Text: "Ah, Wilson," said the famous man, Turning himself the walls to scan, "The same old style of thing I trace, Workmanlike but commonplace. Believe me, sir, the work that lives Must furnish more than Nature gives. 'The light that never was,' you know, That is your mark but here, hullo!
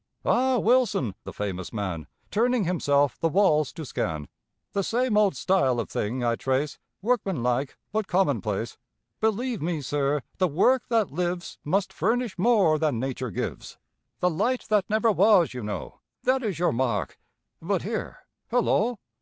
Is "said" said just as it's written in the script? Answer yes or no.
no